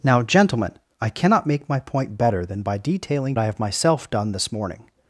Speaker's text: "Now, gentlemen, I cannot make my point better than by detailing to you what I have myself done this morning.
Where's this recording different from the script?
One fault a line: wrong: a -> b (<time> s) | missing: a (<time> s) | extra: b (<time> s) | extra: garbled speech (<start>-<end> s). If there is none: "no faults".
missing: to you what (3.4 s)